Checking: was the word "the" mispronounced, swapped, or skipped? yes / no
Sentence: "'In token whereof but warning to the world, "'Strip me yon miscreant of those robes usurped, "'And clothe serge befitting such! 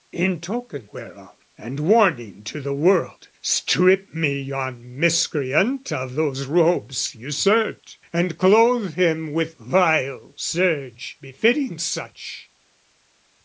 no